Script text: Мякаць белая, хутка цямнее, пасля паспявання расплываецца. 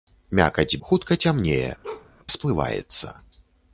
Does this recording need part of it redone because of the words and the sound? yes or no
yes